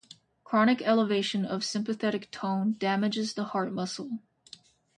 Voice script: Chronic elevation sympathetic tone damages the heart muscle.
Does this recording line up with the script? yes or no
no